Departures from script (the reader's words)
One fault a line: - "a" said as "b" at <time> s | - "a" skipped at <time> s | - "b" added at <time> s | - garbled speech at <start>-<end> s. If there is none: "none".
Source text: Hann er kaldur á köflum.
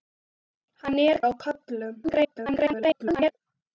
- "kaldur" skipped at 1.2 s
- garbled speech at 2.0-3.3 s